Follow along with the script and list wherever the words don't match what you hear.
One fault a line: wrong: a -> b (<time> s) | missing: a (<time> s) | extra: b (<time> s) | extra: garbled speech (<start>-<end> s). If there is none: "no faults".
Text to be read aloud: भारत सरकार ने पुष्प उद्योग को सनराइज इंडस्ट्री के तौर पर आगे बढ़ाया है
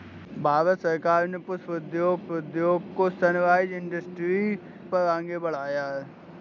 extra: उद्योग (2.3 s)
missing: के तौर (4.6 s)